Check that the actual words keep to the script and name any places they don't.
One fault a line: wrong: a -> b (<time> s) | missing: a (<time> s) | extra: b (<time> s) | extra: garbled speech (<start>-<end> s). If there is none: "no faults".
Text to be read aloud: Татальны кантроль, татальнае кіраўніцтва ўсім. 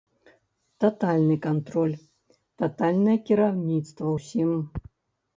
no faults